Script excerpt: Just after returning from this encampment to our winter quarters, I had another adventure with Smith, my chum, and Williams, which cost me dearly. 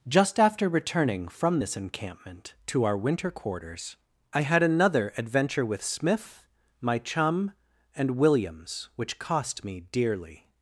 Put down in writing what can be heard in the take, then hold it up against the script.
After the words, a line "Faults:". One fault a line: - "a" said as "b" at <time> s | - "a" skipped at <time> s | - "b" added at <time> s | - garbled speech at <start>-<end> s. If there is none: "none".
Just after returning from this encampment to our winter quarters, I had another adventure with Smith, my chum, and Williams, which cost me dearly.
Faults:
none